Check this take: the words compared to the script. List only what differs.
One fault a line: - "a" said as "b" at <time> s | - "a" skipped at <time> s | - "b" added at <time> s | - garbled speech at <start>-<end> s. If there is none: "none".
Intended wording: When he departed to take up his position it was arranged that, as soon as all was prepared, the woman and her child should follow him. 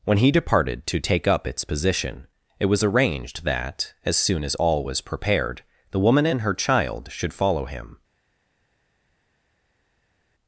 - "his" said as "its" at 1.4 s